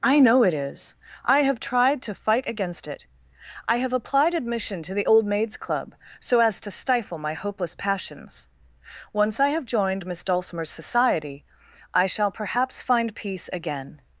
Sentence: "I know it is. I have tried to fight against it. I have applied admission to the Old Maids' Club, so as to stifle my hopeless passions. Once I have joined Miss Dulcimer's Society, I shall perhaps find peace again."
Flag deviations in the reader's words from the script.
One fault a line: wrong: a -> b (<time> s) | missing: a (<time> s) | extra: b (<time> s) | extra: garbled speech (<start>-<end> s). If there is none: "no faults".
no faults